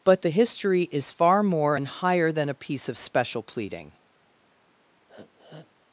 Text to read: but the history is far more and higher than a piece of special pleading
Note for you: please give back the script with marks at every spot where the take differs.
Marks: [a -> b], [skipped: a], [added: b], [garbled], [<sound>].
but the history is far more and higher than a piece of special pleading [sniff]